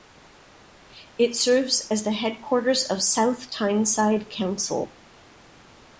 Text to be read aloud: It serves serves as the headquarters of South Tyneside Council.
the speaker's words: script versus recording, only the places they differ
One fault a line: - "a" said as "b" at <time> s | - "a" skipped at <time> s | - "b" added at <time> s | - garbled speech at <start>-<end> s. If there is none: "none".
- "serves" skipped at 1.9 s